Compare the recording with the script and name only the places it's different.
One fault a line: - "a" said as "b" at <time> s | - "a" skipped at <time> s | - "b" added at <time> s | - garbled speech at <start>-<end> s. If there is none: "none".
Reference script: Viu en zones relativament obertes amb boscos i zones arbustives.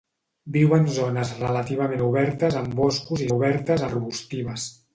- "zones" said as "obertes" at 3.3 s